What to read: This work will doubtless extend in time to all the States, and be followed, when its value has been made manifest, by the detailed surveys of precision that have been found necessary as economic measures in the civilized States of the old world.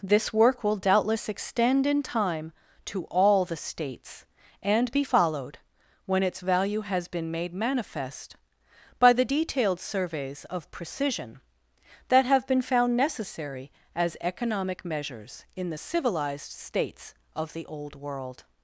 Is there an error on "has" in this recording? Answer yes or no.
no